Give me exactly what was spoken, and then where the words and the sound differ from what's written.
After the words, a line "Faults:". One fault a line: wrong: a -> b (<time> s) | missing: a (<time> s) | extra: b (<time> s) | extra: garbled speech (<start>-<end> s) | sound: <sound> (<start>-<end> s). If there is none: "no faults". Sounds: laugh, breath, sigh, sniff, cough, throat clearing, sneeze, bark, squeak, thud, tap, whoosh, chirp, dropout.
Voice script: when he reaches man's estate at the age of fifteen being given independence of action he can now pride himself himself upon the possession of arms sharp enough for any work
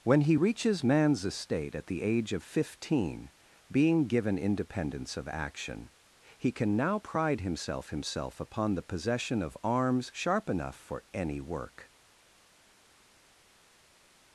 when he reaches man's estate at the age of fifteen being given independence of action he can now pride himself himself upon the possession of arms sharp enough for any work
Faults:
no faults